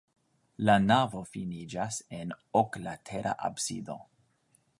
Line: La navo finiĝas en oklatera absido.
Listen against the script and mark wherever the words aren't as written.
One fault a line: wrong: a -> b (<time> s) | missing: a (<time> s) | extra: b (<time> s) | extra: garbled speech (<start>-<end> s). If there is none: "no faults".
no faults